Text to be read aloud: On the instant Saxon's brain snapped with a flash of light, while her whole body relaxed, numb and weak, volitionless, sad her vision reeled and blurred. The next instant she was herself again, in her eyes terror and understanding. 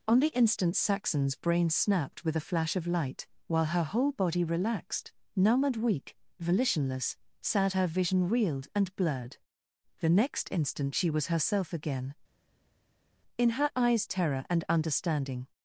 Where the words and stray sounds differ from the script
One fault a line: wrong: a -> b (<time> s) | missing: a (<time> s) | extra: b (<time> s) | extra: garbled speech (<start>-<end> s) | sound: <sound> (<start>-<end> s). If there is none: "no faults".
no faults